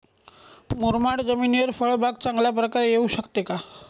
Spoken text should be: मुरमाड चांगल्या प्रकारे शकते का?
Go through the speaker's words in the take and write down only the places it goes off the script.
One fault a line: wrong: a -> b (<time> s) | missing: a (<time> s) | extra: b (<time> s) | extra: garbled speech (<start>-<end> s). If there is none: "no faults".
extra: जमिनीवर फळबाग (1.2 s)
extra: येऊ (2.9 s)